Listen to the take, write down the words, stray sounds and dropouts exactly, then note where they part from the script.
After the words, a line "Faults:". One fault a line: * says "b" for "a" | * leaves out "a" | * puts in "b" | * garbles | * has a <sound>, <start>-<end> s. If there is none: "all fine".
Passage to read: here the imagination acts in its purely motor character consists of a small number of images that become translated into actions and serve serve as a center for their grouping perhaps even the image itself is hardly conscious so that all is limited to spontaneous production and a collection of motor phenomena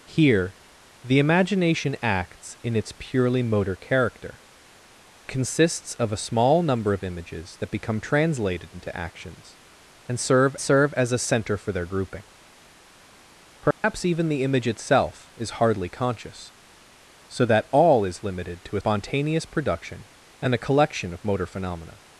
here the imagination acts in its purely motor character consists of a small number of images that become translated into actions and serve serve as a center for their grouping perhaps even the image itself is hardly conscious so that all is limited to spontaneous production and a collection of motor phenomena
Faults:
* has a dropout, 13.7-13.8 s